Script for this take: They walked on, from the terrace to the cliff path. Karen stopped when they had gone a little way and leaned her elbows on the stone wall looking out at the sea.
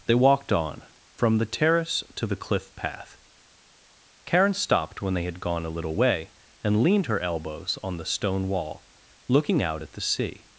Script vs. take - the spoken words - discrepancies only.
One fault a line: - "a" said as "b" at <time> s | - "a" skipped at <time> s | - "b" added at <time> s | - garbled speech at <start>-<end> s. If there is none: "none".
none